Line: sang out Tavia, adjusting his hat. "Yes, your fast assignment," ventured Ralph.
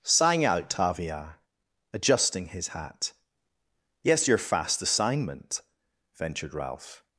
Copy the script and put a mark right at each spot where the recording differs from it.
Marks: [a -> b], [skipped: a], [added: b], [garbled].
sang out Tavia, adjusting his hat. "Yes, your fast assignment," ventured Ralph.